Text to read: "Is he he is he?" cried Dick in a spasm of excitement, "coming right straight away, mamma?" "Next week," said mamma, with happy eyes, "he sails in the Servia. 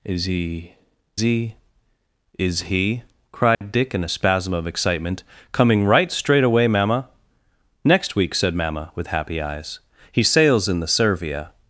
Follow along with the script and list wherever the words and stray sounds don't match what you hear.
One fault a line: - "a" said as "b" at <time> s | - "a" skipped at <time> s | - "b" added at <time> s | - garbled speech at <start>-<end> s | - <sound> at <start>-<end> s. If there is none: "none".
- dropout at 3.5-3.6 s